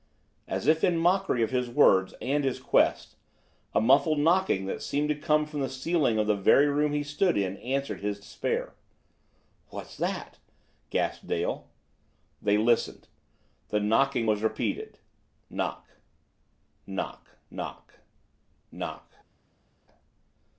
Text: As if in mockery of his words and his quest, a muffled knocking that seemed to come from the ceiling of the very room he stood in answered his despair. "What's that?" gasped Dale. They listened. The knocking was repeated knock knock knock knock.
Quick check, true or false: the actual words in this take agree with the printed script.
true